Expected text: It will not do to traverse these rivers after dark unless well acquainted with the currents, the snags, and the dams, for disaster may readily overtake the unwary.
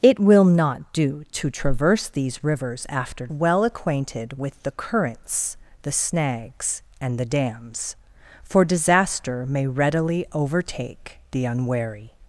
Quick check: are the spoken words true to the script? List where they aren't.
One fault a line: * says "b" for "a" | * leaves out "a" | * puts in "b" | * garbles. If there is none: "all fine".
* leaves out "dark unless"